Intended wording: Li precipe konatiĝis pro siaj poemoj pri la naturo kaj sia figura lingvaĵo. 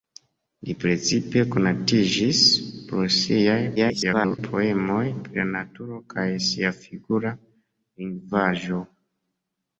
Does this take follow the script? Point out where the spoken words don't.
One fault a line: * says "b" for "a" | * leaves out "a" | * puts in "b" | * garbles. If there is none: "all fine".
* garbles